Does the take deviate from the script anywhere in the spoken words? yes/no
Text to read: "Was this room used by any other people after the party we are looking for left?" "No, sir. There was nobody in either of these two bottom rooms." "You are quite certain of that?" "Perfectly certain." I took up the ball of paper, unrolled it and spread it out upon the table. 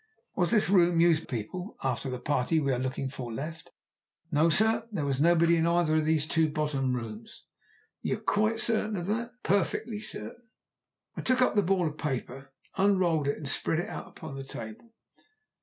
yes